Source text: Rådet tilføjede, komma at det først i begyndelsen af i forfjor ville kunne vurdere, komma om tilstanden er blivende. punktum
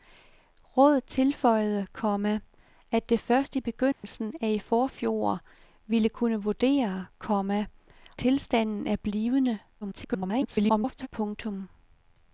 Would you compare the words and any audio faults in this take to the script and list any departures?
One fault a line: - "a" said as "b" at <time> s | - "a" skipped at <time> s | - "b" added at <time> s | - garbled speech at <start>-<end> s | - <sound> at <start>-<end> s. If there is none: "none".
- dropout at 3.9-4.0 s
- "om" skipped at 7.6 s
- garbled speech at 9.8-11.1 s